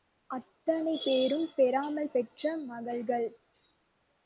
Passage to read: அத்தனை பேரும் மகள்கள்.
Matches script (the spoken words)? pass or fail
fail